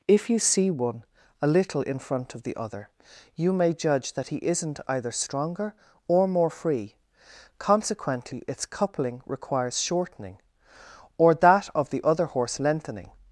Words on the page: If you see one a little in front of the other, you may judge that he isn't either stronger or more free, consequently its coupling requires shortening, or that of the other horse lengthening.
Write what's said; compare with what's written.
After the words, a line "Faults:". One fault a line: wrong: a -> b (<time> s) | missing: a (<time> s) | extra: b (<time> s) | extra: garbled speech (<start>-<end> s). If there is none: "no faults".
If you see one a little in front of the other, you may judge that he isn't either stronger or more free, consequently its coupling requires shortening, or that of the other horse lengthening.
Faults:
no faults